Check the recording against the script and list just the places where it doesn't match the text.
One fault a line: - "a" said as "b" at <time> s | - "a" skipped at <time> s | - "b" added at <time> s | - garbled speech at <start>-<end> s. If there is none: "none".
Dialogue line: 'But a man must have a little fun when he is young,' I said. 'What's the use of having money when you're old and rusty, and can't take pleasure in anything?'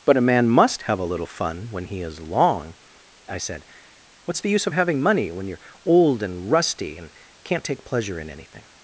- "young" said as "long" at 2.2 s